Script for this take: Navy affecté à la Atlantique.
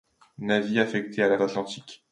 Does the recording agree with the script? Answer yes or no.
yes